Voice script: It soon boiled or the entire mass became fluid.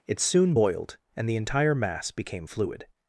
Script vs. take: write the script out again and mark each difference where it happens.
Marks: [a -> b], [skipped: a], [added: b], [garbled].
It soon boiled [or -> and] the entire mass became fluid.